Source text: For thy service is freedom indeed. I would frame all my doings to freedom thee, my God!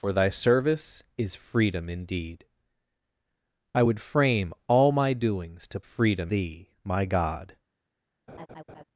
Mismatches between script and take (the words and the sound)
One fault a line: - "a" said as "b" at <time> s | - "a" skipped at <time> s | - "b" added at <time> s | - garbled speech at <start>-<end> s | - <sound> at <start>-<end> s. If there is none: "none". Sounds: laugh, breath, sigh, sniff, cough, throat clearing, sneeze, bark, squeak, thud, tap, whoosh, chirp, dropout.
- laugh at 8.3-8.8 s